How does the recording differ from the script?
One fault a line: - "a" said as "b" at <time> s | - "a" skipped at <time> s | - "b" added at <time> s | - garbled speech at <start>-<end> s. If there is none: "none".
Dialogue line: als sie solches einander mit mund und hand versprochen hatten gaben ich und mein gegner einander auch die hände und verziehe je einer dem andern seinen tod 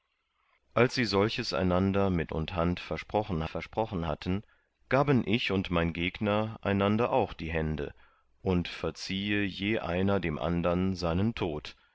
- "mund" skipped at 2.3 s
- "versprochen" added at 3.4 s